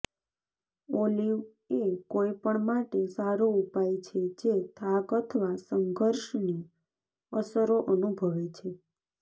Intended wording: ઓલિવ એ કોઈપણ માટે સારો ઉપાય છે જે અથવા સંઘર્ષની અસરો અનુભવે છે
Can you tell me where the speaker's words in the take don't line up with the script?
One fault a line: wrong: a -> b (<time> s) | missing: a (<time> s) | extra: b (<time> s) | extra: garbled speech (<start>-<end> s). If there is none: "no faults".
extra: થાક (4.8 s)